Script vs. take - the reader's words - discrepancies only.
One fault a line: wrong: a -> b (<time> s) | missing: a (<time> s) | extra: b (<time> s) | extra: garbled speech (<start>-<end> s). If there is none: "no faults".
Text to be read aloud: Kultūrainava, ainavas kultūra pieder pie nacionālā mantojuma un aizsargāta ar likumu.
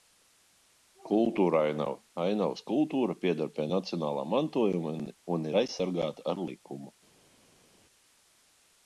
extra: ir (5.5 s)